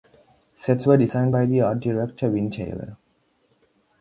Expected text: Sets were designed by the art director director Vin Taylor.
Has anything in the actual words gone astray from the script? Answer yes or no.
yes